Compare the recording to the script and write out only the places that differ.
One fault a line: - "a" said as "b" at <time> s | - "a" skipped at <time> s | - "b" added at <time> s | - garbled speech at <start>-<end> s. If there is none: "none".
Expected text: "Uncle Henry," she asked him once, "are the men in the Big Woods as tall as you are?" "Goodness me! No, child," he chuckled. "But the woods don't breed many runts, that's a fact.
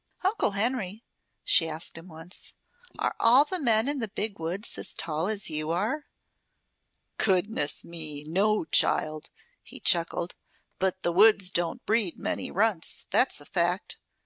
- "all" added at 3.2 s